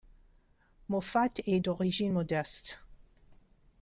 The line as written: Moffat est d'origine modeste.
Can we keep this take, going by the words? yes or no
yes